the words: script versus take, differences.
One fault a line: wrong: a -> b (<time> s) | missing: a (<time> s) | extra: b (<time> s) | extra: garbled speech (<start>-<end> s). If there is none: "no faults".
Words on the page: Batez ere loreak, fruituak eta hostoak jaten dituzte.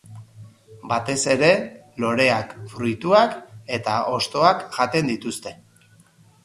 no faults